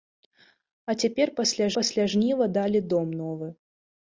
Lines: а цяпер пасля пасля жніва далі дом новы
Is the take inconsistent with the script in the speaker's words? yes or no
no